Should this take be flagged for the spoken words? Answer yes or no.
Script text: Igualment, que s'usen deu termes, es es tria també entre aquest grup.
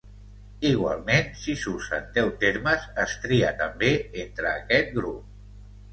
yes